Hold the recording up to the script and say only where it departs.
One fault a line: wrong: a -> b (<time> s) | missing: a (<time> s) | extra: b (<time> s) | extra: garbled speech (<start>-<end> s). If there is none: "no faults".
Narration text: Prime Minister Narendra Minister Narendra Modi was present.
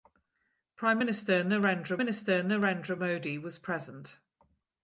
no faults